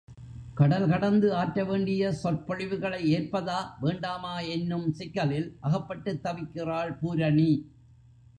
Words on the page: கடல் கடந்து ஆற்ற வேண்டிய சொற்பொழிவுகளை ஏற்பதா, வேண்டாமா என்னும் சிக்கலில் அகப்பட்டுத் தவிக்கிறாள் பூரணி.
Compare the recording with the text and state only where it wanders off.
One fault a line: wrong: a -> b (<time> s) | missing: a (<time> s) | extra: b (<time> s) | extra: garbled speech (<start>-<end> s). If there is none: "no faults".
no faults